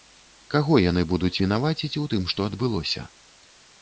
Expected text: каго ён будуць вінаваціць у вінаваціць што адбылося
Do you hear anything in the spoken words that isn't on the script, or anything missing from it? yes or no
yes